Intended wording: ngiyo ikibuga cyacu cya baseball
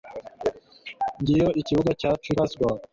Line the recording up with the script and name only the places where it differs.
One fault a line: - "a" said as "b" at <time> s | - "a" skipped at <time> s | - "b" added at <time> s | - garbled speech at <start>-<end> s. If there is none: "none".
- "cya" skipped at 2.3 s